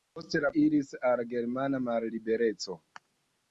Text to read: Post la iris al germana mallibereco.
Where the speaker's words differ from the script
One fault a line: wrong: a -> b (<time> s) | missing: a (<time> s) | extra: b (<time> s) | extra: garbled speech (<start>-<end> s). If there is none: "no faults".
no faults